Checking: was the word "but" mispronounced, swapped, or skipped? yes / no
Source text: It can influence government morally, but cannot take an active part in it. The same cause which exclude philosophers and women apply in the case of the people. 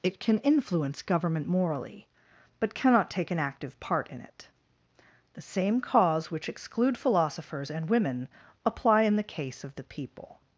no